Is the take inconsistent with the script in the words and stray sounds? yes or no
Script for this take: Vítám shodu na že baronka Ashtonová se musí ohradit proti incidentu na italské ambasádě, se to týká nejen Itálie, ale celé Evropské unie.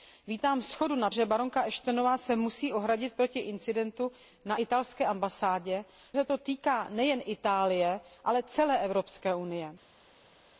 no